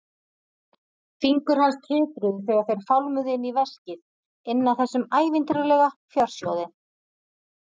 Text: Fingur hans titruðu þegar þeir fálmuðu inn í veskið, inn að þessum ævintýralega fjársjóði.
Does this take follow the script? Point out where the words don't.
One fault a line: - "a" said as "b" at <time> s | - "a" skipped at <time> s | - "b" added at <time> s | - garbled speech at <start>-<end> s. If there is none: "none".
none